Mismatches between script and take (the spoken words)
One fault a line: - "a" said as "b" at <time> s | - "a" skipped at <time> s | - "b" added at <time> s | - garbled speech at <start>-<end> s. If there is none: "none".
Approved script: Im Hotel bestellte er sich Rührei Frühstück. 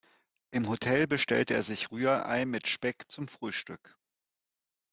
- "mit Speck zum" added at 2.5 s